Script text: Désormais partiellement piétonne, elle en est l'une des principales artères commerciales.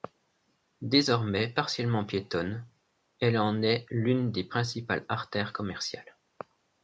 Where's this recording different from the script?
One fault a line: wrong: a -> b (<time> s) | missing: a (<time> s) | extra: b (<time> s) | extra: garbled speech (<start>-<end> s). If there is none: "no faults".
no faults